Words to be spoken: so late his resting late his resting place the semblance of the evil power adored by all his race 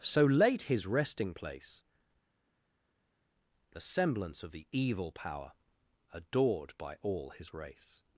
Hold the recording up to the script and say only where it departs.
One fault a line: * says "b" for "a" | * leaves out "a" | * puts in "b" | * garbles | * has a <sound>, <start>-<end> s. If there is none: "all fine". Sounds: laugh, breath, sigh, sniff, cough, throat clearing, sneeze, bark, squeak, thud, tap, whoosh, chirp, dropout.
* leaves out "late his resting"